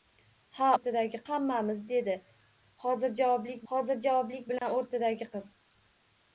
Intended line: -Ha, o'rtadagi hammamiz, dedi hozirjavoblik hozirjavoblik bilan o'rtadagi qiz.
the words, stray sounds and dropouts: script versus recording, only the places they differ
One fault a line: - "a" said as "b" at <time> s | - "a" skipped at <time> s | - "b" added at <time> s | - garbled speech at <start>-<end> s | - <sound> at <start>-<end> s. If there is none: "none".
- dropout at 4.6-4.6 s